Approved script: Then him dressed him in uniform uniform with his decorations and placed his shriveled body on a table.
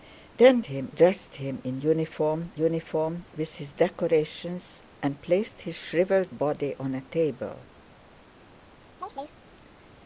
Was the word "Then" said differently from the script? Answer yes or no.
no